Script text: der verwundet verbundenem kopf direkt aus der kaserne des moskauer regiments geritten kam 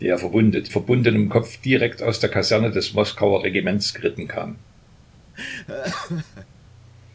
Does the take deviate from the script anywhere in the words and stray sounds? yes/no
yes